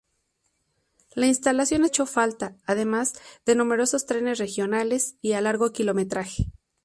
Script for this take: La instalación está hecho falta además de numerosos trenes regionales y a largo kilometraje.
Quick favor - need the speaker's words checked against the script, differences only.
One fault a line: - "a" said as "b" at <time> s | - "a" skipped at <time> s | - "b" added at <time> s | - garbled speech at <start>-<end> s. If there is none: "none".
- "está" skipped at 1.9 s